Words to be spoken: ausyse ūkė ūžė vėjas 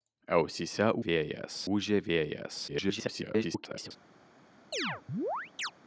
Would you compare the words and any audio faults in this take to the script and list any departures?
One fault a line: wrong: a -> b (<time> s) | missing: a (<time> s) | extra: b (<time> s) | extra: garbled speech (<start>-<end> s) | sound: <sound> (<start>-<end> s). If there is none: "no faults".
wrong: ūkė -> vėjas (1.1 s)
extra: garbled speech (2.7-3.9 s)
sound: chirp (4.7-5.7 s)